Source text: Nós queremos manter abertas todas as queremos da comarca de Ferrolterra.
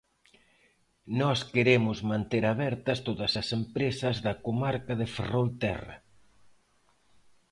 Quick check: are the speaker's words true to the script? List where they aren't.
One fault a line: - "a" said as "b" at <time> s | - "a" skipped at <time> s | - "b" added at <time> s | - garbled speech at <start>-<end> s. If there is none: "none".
- "queremos" said as "empresas" at 3.6 s